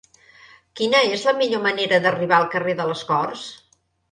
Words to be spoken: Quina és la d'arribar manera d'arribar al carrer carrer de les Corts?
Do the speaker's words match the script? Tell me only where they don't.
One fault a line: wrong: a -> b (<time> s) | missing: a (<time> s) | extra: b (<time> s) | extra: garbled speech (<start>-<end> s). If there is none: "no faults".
wrong: d'arribar -> millor (1.4 s)
missing: carrer (2.8 s)